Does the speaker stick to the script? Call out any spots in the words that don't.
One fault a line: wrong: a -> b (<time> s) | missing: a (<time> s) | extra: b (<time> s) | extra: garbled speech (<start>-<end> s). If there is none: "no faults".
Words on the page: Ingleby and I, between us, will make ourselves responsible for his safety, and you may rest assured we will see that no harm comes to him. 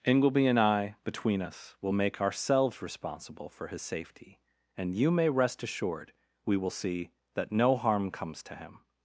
no faults